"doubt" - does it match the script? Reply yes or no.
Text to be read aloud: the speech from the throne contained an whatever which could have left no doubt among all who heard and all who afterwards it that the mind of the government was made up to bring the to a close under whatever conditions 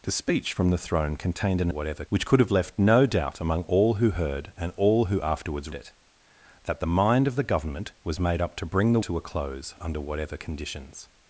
yes